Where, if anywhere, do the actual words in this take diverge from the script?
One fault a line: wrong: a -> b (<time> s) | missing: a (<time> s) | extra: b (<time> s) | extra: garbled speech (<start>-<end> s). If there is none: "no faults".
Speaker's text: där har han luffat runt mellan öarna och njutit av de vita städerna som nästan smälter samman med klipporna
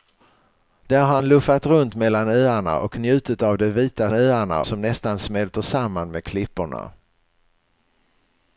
wrong: städerna -> öarna (4.1 s)